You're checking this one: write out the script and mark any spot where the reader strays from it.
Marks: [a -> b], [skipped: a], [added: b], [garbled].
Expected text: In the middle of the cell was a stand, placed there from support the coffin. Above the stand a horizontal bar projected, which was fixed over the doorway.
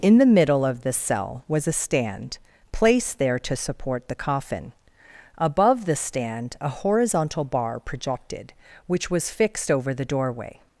In the middle of the cell was a stand, placed there [from -> to] support the coffin. Above the stand a horizontal bar projected, which was fixed over the doorway.